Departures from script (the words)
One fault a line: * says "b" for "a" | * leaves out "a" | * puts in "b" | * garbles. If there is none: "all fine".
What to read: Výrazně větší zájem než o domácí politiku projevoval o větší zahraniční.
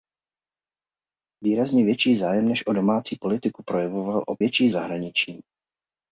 all fine